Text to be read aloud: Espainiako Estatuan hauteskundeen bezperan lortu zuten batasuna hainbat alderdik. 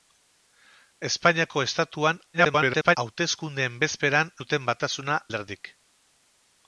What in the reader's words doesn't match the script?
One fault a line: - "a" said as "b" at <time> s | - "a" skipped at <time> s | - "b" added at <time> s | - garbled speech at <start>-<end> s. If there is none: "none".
- garbled speech at 2.3-3.0 s
- "lortu" skipped at 4.3 s
- "hainbat" skipped at 5.2 s